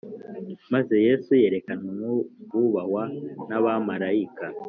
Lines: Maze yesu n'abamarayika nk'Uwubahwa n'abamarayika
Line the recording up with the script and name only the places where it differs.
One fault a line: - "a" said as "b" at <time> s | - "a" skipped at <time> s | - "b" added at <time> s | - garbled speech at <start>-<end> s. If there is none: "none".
- "n'abamarayika" said as "yerekanwa" at 1.4 s